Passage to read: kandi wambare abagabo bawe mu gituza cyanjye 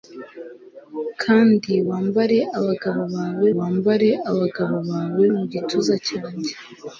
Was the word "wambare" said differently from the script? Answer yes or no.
no